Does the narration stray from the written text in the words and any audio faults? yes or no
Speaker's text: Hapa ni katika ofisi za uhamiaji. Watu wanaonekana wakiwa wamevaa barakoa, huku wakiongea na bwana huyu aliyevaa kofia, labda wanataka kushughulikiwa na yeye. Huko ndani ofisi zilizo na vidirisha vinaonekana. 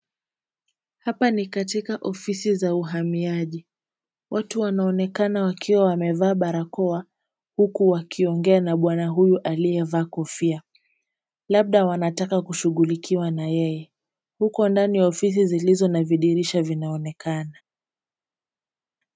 no